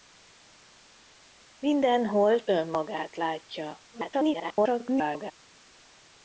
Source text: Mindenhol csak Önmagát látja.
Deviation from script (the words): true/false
true